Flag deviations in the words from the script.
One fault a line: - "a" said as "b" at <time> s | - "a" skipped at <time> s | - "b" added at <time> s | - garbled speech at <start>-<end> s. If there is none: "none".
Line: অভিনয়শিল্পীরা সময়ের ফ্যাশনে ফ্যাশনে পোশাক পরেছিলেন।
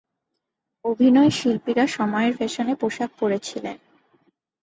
- "ফ্যাশনে" skipped at 2.7 s